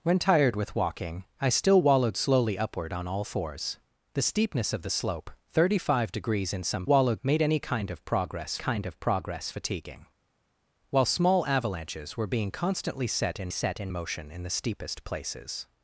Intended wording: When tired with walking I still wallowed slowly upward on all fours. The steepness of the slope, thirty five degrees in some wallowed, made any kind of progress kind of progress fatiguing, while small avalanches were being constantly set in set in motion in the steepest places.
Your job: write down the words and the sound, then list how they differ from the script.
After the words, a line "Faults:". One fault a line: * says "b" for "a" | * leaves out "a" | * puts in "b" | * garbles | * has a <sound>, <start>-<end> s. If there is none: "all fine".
When tired with walking I still wallowed slowly upward on all fours. The steepness of the slope, thirty five degrees in some wallowed, made any kind of progress kind of progress fatiguing, while small avalanches were being constantly set in set in motion in the steepest places.
Faults:
all fine